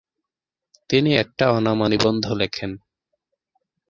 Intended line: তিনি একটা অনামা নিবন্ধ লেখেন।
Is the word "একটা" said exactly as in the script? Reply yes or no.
yes